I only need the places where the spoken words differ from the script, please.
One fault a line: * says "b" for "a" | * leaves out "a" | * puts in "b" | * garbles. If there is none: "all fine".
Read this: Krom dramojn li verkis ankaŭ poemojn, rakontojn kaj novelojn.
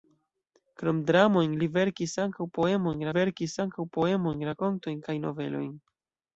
* puts in "verkis ankaŭ poemojn"